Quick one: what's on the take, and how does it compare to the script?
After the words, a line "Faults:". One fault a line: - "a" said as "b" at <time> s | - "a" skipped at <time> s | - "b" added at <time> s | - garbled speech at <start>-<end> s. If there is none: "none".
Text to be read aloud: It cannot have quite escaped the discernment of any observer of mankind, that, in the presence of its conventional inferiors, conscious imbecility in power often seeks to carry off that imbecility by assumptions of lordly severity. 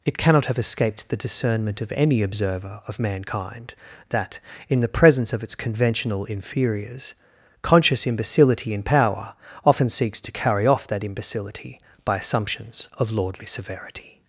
It cannot have escaped the discernment of any observer of mankind, that, in the presence of its conventional inferiors, conscious imbecility in power often seeks to carry off that imbecility by assumptions of lordly severity.
Faults:
- "quite" skipped at 0.6 s